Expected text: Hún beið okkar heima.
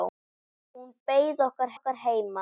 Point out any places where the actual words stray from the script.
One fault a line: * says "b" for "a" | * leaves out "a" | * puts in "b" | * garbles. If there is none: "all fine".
* puts in "okkar"